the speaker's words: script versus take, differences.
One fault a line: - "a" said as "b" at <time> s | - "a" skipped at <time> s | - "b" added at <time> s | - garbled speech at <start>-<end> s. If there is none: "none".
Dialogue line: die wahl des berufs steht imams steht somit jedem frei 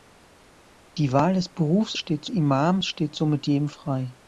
none